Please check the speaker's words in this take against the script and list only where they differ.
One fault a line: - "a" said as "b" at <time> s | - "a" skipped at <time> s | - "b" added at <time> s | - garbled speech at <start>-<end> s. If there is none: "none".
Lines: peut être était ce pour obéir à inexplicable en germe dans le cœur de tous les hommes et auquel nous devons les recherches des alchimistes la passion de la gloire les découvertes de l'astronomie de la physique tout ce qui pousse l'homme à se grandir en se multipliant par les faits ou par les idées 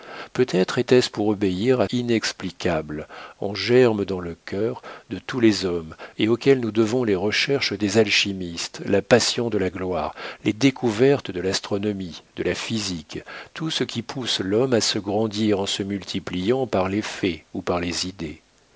none